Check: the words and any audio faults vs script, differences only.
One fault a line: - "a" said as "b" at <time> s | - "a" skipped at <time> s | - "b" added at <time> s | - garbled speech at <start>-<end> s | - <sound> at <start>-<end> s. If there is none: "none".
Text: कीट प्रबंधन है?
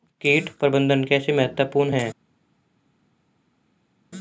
- "कैसे महत्वपूर्ण" added at 1.0 s